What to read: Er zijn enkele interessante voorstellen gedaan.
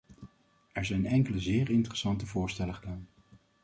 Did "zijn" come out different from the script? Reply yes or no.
no